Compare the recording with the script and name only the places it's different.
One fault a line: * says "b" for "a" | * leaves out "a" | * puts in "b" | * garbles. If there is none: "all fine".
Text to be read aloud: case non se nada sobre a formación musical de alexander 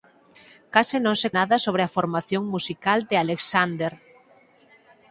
all fine